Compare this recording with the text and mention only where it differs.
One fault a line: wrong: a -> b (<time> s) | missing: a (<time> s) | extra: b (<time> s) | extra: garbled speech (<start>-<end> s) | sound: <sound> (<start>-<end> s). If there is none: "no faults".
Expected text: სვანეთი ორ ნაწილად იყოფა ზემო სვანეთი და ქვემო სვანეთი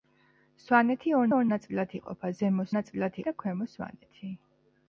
extra: ორ (1.3 s)
wrong: სვანეთი -> ნაწილად (2.7 s)